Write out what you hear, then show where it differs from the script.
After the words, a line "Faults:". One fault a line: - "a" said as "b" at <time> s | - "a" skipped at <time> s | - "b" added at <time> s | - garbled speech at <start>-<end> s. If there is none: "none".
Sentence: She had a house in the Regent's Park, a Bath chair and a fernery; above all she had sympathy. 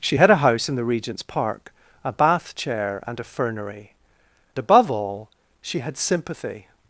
She had a house in the Regent's Park, a Bath chair and a fernery; above all she had sympathy.
Faults:
none